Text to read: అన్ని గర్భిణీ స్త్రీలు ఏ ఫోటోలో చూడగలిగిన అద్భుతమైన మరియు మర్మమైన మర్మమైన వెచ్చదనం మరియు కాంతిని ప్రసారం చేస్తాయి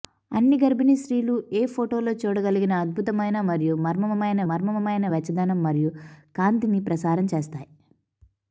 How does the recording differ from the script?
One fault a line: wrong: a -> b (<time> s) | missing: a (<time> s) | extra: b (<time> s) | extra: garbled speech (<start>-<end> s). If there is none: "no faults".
no faults